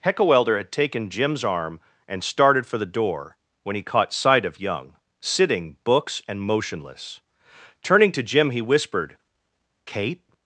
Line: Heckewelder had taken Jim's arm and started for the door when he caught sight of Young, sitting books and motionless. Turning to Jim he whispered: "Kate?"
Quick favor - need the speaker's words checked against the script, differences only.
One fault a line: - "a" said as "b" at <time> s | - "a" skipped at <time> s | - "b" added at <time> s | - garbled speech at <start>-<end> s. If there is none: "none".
none